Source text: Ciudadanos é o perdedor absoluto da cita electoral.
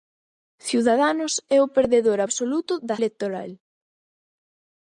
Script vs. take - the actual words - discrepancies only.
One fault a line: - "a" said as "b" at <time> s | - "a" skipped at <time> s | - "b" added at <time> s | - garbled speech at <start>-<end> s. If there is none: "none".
- "cita" skipped at 3.0 s